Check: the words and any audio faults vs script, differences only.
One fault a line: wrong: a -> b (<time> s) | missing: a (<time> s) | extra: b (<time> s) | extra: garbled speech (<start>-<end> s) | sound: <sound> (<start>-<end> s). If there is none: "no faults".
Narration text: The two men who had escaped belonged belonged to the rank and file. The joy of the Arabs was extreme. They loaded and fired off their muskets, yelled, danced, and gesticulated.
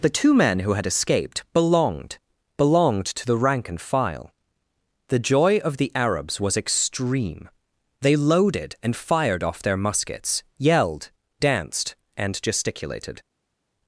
no faults